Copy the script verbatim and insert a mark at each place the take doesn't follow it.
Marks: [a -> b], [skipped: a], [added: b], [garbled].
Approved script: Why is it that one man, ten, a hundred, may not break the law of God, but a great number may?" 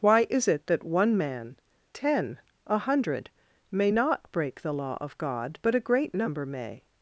Why is it that one man, ten, a hundred, may not break the law of God, but a great number may?"